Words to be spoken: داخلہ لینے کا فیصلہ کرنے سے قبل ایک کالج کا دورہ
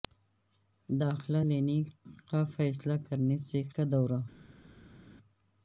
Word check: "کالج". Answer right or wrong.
wrong